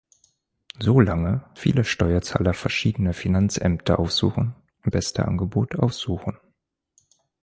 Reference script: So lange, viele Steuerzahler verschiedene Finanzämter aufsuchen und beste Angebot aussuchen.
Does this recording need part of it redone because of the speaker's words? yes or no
no